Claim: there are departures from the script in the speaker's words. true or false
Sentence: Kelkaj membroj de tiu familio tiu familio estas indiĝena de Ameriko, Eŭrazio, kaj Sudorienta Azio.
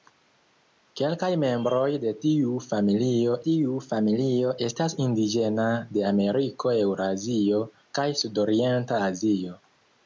false